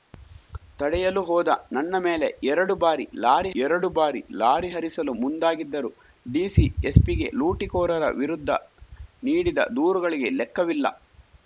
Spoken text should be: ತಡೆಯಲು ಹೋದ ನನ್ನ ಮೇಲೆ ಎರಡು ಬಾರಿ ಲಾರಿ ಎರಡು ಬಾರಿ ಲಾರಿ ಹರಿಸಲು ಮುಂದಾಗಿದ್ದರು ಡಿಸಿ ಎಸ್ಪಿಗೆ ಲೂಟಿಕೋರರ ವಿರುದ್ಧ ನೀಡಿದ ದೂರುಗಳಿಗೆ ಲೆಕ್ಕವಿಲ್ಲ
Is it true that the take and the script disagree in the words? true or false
false